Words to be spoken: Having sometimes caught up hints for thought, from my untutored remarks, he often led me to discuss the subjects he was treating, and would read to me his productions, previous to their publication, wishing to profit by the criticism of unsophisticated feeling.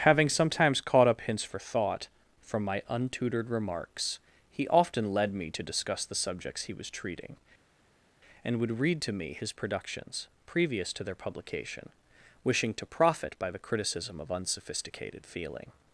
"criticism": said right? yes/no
yes